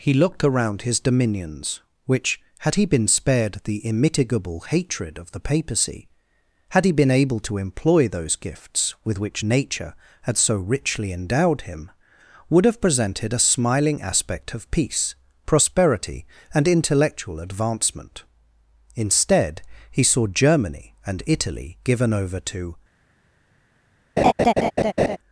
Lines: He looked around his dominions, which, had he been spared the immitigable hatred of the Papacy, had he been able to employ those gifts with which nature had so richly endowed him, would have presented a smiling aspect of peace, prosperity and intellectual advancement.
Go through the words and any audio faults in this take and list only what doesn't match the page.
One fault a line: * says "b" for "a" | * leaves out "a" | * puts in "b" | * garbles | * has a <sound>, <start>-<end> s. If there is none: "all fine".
* puts in "Instead he saw Germany and Italy given over to"
* has a laugh, 24.2-25.2 s